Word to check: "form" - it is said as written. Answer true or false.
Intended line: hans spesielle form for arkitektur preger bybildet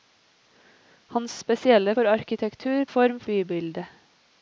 false